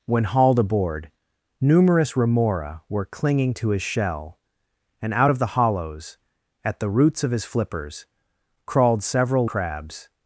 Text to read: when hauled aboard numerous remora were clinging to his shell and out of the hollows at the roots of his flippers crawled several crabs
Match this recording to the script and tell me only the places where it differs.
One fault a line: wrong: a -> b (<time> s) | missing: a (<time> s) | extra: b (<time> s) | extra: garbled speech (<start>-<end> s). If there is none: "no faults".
no faults